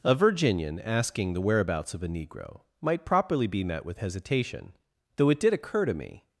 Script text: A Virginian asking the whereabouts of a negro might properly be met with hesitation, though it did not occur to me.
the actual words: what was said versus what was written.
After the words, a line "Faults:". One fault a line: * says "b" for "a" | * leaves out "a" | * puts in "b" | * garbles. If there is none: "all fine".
A Virginian asking the whereabouts of a negro might properly be met with hesitation, though it did occur to me.
Faults:
* leaves out "not"